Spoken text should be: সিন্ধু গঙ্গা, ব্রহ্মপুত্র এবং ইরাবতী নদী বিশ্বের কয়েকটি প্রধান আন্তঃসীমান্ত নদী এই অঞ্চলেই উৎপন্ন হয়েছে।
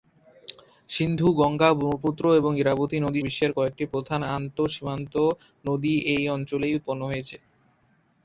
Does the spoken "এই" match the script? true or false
true